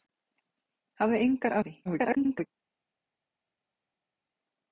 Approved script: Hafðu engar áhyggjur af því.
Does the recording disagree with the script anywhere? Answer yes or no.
yes